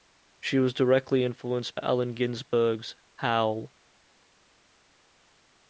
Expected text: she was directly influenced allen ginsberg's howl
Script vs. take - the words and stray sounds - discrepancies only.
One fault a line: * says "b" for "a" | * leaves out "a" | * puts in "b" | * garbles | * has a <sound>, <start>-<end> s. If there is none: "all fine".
all fine